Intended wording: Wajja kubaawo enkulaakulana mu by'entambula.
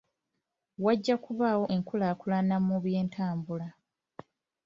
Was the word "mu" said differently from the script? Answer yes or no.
no